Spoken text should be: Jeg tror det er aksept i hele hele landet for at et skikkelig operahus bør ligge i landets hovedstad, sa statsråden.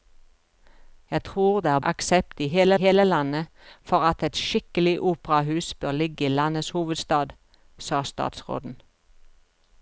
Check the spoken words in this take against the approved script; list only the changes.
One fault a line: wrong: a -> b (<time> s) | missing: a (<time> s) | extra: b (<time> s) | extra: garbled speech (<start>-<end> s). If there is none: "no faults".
no faults